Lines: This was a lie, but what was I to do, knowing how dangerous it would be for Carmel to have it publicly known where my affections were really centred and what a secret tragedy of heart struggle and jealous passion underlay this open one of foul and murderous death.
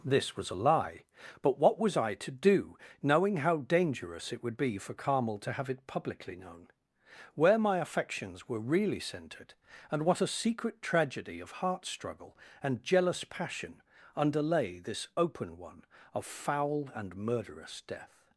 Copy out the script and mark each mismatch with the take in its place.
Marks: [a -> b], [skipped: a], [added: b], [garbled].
This was a lie, but what was I to do, knowing how dangerous it would be for Carmel to have it publicly known where my affections were really centred and what a secret tragedy of heart struggle and jealous passion underlay this open one of foul and murderous death.